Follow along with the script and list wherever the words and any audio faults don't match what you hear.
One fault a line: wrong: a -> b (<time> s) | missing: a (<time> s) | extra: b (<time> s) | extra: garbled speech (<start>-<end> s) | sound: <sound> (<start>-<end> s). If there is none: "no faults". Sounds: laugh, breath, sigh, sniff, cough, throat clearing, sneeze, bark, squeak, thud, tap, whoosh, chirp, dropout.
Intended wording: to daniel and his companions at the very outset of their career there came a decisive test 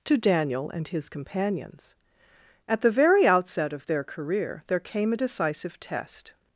no faults